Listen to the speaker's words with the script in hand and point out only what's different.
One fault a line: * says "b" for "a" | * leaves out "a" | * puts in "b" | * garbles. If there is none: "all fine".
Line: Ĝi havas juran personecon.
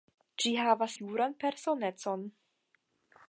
all fine